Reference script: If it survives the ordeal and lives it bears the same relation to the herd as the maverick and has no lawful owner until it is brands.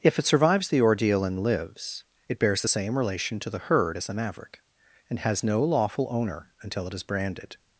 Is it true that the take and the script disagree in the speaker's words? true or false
true